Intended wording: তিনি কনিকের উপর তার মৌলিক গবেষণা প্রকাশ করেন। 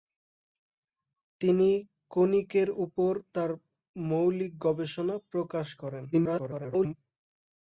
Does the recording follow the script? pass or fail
fail